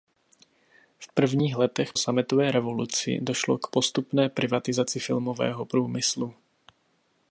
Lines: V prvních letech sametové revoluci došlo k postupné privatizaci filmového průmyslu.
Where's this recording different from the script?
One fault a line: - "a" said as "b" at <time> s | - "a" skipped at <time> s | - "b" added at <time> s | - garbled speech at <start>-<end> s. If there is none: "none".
none